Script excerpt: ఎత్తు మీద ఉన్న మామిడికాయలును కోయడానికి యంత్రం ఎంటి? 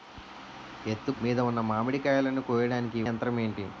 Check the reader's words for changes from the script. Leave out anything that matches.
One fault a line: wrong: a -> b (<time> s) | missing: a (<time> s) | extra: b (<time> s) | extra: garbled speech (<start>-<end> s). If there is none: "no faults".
no faults